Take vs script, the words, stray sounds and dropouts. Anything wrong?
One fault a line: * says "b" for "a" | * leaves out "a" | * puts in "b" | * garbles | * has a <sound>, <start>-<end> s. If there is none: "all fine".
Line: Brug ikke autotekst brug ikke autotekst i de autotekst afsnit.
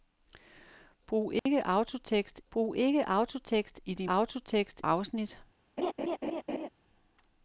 * has a dropout, 1.4-1.5 s
* has a laugh, 5.8-6.7 s